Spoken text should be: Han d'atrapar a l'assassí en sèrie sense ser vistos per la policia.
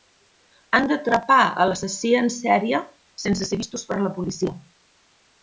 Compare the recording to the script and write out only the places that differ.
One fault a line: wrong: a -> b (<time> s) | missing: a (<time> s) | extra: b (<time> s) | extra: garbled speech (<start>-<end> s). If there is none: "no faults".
no faults